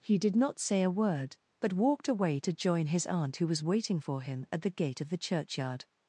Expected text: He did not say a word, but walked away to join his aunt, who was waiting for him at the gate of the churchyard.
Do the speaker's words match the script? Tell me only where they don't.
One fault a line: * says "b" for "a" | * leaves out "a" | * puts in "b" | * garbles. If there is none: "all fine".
all fine